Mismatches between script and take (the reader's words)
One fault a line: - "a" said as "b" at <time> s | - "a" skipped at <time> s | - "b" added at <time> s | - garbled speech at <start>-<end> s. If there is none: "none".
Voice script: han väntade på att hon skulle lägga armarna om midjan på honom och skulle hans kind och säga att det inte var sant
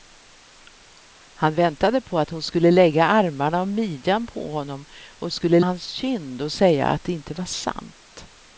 none